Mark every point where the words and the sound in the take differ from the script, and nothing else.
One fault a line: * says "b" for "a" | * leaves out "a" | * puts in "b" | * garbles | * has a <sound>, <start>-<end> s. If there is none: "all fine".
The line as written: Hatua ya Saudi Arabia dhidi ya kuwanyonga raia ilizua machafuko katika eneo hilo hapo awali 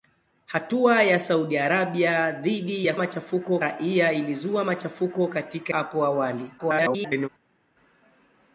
* says "machafuko" for "kuwanyonga"
* leaves out "eneo hilo"
* garbles